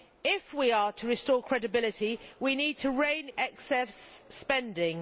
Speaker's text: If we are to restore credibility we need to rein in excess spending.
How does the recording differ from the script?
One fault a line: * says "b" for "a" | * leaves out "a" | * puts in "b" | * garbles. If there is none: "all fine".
* leaves out "in"